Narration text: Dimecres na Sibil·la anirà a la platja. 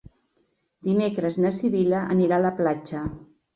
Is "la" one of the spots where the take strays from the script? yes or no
no